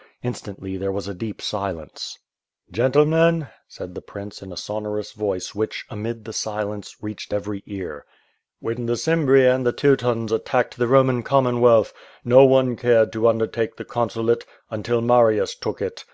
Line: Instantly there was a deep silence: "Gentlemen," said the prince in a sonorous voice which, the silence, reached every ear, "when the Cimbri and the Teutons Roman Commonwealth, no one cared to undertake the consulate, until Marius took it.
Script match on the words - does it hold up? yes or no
no